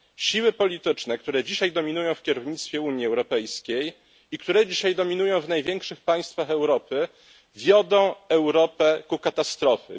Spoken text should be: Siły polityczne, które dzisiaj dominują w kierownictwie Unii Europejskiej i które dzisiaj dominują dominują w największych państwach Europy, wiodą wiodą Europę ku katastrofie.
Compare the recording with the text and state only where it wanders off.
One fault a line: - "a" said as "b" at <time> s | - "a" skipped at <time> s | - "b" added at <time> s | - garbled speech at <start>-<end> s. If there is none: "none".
- "dominują" skipped at 5.4 s
- "wiodą" skipped at 8.2 s